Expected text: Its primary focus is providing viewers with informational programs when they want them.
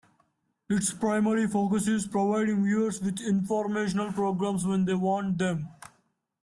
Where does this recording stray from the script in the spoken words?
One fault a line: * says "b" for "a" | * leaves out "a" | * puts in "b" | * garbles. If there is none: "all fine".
all fine